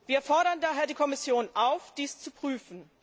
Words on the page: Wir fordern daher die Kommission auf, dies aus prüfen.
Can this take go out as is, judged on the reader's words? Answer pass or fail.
fail